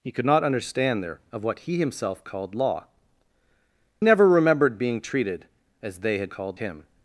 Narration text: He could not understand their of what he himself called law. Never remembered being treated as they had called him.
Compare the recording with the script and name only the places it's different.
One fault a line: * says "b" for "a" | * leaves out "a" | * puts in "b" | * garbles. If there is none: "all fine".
all fine